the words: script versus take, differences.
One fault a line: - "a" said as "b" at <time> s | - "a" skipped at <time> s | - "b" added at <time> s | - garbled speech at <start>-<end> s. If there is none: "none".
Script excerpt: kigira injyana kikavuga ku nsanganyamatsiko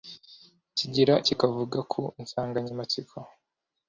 - "injyana" skipped at 1.1 s